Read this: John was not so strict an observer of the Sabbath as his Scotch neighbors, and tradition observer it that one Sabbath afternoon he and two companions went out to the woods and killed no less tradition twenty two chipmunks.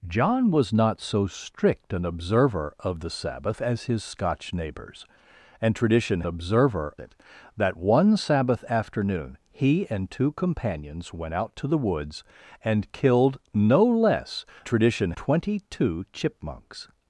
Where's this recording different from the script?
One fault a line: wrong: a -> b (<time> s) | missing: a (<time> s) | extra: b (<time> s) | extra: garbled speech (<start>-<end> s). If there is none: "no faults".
no faults